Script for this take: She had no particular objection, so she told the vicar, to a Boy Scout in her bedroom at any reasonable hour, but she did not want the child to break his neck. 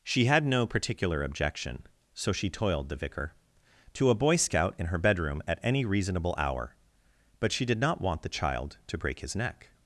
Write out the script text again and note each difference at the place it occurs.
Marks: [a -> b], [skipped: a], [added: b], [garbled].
She had no particular objection, so she [told -> toiled] the vicar, to a Boy Scout in her bedroom at any reasonable hour, but she did not want the child to break his neck.